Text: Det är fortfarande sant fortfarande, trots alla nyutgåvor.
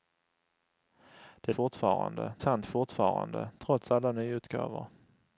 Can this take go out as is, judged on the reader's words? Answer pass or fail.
pass